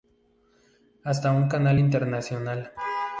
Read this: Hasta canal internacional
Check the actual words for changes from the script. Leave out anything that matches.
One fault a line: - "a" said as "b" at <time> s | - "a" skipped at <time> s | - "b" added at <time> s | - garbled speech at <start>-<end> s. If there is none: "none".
- "un" added at 1.3 s